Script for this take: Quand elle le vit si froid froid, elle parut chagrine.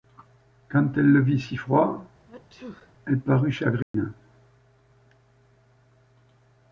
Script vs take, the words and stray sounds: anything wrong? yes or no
yes